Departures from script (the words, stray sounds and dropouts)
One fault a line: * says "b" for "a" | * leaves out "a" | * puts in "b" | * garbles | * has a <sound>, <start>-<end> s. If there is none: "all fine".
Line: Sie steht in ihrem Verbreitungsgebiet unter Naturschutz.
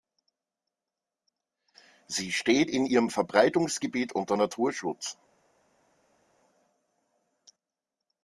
all fine